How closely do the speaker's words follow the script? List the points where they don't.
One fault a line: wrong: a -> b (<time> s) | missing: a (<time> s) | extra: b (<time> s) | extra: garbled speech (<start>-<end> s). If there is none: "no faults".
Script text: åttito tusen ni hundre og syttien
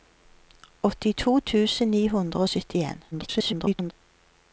extra: garbled speech (3.1-3.9 s)